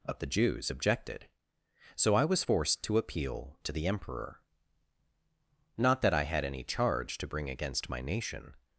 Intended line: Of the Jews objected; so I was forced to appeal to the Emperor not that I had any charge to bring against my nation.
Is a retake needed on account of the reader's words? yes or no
no